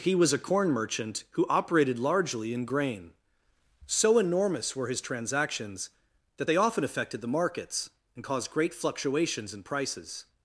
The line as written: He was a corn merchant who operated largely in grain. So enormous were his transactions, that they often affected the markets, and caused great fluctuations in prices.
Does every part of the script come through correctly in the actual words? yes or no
yes